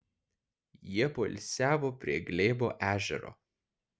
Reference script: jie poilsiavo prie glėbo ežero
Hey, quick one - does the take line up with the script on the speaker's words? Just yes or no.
yes